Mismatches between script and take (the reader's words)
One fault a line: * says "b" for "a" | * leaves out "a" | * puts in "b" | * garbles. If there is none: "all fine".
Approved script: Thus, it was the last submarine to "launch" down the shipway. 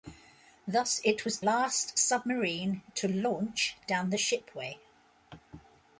* leaves out "the"